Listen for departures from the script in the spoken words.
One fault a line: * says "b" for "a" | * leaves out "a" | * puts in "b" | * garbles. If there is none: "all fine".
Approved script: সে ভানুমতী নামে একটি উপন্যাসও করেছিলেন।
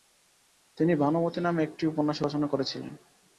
* says "তিনি" for "সে"
* puts in "রচনা"